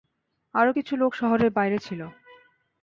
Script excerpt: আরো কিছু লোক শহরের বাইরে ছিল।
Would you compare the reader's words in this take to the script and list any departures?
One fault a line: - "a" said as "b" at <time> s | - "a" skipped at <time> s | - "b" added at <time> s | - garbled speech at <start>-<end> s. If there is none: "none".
none